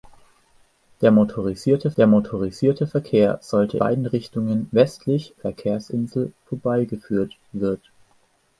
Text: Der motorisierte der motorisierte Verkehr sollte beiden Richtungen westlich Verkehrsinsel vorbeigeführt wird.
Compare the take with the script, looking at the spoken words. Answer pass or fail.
pass